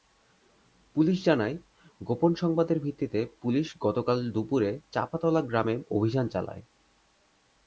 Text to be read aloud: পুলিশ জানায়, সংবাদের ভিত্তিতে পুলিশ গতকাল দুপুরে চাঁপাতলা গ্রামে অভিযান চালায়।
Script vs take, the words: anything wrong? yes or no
yes